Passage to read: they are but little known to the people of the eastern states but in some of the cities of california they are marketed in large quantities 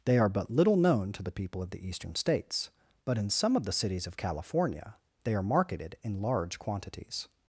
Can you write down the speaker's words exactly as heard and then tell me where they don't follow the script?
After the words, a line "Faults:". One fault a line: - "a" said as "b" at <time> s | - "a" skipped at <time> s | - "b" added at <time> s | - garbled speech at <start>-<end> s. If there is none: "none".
they are but little known to the people of the eastern states but in some of the cities of california they are marketed in large quantities
Faults:
none